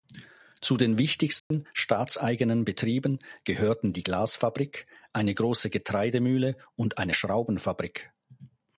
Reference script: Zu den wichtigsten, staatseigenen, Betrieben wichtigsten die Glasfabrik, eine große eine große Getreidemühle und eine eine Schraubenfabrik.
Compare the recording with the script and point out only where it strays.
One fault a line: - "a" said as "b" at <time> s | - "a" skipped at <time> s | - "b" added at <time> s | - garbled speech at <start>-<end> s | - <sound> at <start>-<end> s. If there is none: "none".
- dropout at 1.4-1.5 s
- "wichtigsten" said as "gehörten" at 3.4 s
- "eine große" skipped at 5.7 s
- "eine" skipped at 7.2 s